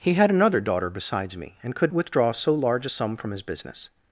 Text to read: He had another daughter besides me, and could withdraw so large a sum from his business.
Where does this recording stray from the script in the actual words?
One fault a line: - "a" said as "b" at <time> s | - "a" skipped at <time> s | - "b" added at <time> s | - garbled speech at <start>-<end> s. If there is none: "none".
none